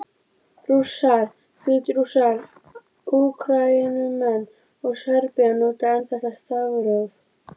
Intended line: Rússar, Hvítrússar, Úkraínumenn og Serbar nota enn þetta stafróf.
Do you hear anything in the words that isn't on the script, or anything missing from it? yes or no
no